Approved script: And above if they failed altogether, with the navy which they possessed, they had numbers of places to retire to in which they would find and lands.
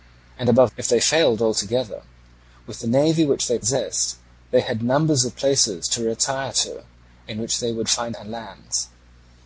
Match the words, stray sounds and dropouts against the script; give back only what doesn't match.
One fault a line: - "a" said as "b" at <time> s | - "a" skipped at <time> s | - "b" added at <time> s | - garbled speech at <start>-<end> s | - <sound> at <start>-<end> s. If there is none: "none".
none